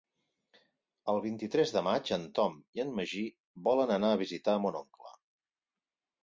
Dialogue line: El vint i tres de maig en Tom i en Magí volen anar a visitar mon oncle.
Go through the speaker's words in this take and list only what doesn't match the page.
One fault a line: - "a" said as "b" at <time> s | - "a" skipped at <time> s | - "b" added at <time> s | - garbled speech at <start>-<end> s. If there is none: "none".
none